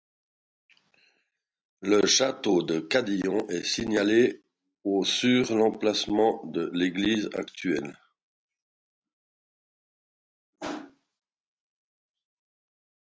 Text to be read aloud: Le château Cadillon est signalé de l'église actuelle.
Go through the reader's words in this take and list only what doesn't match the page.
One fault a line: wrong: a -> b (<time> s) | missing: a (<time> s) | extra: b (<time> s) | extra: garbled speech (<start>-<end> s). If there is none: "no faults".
extra: de (2.6 s)
extra: au sur l'emplacement (4.8 s)